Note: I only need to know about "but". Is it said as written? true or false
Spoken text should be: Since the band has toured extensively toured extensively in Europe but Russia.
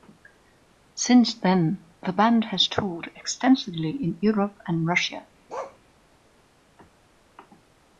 false